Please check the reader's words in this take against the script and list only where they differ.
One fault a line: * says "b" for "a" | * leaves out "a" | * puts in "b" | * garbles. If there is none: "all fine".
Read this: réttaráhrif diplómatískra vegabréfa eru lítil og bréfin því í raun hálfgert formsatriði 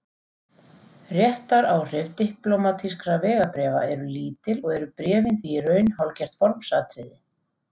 * puts in "eru"